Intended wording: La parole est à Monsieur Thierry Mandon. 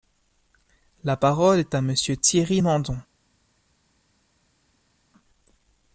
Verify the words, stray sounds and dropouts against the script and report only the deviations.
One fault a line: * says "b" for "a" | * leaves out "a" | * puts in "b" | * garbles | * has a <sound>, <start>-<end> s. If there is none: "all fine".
all fine